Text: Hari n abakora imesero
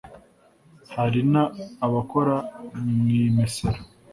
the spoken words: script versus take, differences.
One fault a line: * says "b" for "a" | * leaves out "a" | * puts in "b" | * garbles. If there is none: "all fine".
* puts in "mu"